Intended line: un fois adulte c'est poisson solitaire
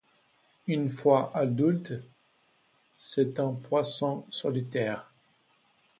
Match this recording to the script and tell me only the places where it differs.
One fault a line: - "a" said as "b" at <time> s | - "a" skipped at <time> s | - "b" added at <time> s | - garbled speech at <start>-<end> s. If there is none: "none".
- "un" said as "une" at 0.7 s
- "un" added at 3.4 s